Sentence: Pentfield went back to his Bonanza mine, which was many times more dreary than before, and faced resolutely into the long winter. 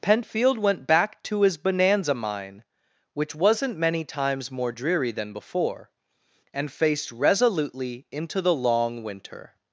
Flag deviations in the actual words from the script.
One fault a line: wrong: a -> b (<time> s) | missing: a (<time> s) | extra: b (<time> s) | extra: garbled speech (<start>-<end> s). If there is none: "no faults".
wrong: was -> wasn't (3.4 s)